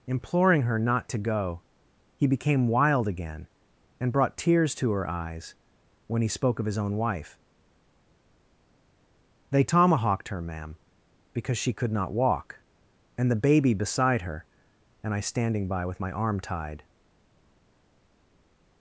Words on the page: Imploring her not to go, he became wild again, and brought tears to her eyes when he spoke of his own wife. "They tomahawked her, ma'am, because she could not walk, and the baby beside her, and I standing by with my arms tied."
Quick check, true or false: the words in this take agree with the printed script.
false